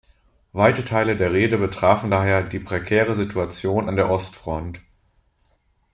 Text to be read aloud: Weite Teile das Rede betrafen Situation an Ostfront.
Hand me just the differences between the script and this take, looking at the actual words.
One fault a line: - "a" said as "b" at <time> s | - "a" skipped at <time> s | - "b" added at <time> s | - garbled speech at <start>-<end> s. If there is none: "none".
- "das" said as "der" at 1.1 s
- "daher die prekäre" added at 2.1 s
- "der" added at 4.0 s